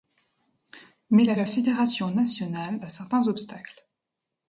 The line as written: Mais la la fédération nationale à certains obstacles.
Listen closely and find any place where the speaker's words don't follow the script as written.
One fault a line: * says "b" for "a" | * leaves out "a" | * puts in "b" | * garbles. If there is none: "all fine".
all fine